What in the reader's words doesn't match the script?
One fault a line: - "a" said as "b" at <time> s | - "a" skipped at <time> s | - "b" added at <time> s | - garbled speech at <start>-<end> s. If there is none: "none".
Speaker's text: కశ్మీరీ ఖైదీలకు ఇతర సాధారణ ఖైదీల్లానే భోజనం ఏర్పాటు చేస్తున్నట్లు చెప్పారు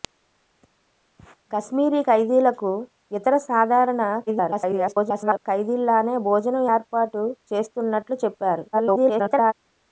- garbled speech at 4.3-5.4 s
- garbled speech at 8.7-9.5 s